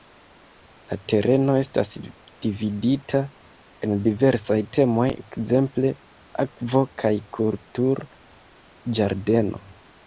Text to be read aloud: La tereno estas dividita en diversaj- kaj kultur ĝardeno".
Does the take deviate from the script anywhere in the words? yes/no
yes